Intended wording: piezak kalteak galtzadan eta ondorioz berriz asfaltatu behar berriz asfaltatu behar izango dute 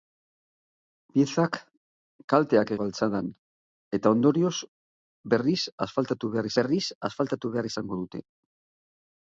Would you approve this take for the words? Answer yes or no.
yes